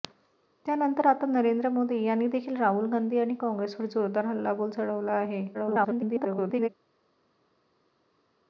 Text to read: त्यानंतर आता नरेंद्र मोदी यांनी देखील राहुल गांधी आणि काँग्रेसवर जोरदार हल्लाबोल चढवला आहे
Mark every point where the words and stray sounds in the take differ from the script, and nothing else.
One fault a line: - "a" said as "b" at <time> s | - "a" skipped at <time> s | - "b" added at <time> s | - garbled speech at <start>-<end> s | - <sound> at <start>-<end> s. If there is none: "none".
- garbled speech at 5.5-6.7 s